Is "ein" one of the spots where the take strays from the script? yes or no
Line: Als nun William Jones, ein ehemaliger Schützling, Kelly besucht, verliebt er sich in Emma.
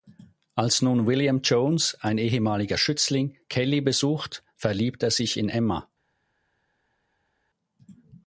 no